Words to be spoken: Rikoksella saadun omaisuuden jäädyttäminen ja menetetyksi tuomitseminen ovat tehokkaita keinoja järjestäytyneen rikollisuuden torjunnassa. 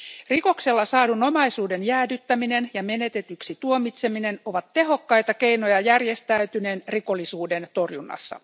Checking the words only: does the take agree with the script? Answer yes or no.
yes